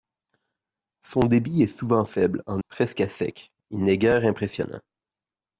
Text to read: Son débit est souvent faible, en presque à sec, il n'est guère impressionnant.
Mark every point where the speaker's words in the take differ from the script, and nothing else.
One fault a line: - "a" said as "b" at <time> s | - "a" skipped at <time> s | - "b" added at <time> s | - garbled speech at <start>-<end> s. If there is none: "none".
none